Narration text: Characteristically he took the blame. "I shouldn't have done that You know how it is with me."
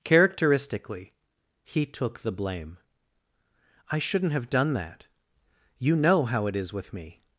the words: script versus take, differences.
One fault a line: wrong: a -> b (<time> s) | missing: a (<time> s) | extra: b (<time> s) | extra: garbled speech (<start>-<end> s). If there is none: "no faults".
no faults